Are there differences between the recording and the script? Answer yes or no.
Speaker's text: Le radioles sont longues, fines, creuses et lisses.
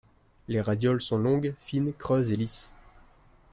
yes